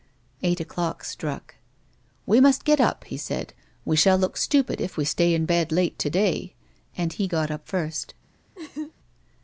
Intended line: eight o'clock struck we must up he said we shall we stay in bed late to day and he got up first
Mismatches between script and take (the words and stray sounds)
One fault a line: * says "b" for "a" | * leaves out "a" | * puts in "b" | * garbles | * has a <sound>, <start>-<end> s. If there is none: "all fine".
* puts in "get"
* puts in "look stupid if"
* has a laugh, 8.5-8.9 s